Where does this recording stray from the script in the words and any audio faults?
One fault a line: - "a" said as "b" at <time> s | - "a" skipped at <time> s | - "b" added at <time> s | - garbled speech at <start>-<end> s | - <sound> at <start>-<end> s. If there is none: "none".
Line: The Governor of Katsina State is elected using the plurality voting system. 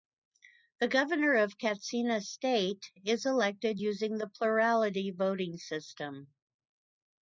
none